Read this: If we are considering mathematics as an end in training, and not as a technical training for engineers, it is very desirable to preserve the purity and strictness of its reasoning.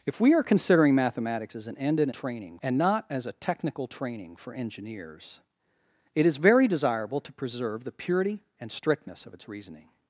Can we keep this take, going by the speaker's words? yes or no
yes